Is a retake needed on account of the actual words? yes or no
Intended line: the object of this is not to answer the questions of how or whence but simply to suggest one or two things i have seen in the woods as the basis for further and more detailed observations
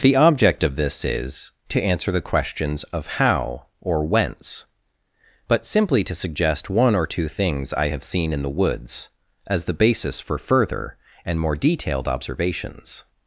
yes